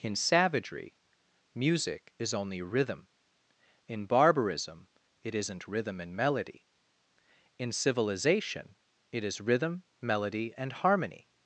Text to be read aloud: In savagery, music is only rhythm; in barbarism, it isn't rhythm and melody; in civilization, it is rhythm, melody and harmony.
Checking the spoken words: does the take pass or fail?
pass